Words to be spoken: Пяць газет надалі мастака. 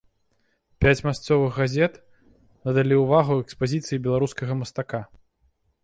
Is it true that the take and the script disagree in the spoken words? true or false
true